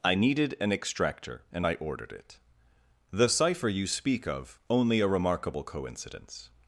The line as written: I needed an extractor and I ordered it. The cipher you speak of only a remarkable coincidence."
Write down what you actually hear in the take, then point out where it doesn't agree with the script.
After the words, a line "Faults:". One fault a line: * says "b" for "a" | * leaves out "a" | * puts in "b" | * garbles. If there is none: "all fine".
I needed an extractor and I ordered it. The cipher you speak of only a remarkable coincidence."
Faults:
all fine